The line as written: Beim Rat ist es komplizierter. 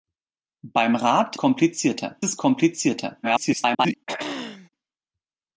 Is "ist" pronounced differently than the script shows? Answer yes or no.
yes